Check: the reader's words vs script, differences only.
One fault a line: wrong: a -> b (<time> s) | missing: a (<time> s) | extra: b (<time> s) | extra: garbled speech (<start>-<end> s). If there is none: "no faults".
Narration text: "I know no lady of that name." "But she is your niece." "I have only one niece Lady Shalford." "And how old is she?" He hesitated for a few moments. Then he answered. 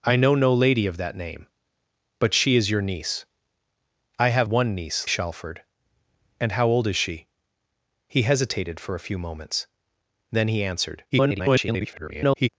missing: only (4.5 s)
missing: Lady (5.1 s)
extra: garbled speech (11.1-12.5 s)